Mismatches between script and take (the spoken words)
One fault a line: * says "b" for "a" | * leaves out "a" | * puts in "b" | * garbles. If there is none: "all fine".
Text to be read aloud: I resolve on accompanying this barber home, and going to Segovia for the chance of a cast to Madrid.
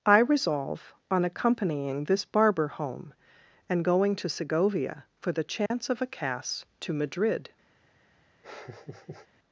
all fine